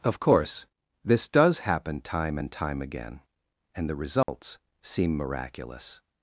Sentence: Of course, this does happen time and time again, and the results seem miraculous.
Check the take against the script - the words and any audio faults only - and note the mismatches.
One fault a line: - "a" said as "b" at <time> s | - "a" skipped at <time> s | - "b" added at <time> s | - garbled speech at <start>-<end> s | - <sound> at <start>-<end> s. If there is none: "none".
- dropout at 4.2-4.3 s